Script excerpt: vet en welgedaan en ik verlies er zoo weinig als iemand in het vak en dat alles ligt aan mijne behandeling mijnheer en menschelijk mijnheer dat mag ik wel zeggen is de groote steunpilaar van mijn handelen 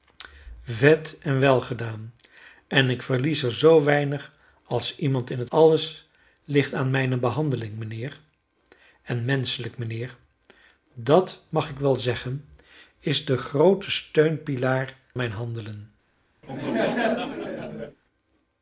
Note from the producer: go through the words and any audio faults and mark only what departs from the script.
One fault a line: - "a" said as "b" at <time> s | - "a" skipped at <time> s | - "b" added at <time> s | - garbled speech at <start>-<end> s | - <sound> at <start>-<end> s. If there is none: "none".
- "vak en dat" skipped at 5.5 s
- "van" skipped at 15.0 s
- laugh at 16.4-18.0 s